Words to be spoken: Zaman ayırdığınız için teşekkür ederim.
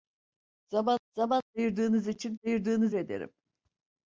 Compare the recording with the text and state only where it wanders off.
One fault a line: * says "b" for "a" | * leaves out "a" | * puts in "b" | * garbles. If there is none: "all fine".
* puts in "zaman"
* says "ayırdığınız" for "teşekkür"